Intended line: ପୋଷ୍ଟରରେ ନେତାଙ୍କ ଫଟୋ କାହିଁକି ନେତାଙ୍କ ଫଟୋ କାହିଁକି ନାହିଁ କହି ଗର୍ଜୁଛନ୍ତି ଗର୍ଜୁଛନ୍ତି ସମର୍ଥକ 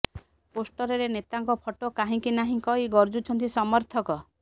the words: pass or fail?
fail